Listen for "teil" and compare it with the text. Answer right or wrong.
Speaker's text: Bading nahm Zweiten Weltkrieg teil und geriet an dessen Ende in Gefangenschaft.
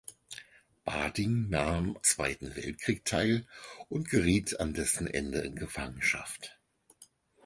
right